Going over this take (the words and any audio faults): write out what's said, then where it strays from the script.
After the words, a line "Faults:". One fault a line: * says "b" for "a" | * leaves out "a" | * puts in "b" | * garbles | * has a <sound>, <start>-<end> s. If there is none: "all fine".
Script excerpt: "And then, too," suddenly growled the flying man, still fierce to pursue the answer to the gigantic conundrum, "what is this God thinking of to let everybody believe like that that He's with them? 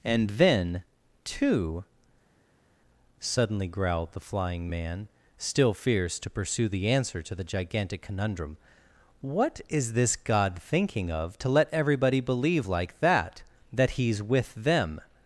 "And then, too," suddenly growled the flying man, still fierce to pursue the answer to the gigantic conundrum, "what is this God thinking of to let everybody believe like that that He's with them?
Faults:
all fine